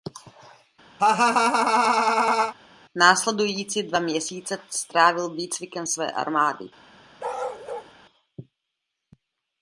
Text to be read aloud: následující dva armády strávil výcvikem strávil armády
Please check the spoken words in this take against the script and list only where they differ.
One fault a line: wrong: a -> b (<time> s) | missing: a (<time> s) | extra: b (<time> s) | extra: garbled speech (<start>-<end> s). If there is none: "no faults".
wrong: armády -> měsíce (4.0 s)
wrong: strávil -> své (5.8 s)